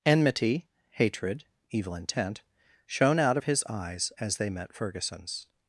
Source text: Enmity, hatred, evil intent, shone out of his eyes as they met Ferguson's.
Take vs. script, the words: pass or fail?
pass